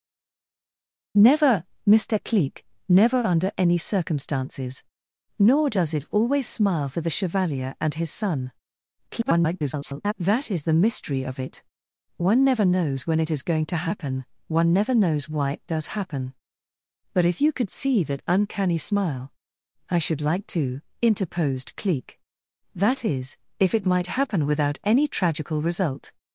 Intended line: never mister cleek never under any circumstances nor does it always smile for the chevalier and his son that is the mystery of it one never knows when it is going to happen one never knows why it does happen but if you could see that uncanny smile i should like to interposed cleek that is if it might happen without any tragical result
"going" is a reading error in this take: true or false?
false